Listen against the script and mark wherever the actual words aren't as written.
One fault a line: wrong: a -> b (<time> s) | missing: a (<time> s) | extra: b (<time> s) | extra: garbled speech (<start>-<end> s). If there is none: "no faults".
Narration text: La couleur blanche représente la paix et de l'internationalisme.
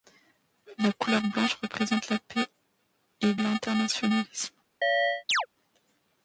missing: de (3.4 s)